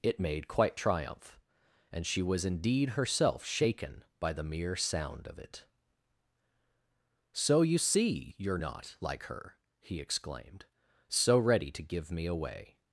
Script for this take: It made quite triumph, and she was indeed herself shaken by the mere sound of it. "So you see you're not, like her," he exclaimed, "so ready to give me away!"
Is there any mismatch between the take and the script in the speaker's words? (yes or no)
no